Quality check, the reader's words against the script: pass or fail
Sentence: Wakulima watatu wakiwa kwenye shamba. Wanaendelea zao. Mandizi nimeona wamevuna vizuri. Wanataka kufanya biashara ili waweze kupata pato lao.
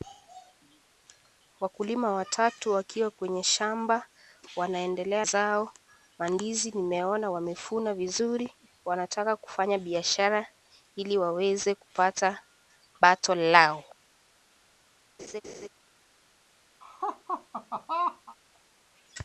pass